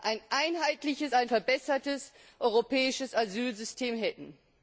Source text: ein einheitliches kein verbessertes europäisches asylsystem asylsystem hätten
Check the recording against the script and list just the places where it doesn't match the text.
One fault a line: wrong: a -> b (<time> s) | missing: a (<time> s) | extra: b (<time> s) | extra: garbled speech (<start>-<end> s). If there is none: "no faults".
wrong: kein -> ein (1.1 s)
missing: asylsystem (4.0 s)